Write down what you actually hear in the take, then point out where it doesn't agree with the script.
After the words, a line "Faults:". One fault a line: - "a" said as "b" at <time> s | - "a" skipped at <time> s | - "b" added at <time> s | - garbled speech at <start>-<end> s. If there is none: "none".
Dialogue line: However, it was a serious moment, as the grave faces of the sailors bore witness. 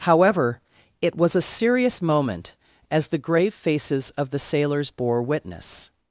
However, it was a serious moment, as the grave faces of the sailors bore witness.
Faults:
none